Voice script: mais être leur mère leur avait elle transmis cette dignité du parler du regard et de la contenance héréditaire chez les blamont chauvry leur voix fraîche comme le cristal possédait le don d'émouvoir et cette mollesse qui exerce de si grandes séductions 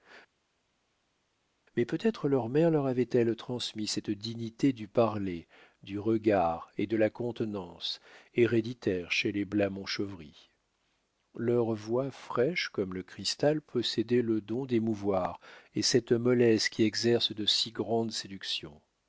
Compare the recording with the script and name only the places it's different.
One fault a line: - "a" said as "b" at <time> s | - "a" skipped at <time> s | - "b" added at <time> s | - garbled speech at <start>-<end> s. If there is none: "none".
- "peut" added at 1.8 s